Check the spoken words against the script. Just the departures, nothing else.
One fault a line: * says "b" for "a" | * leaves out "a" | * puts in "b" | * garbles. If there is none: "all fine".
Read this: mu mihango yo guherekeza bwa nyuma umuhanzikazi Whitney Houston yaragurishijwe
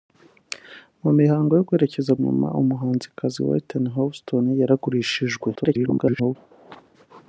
* leaves out "bwa"
* garbles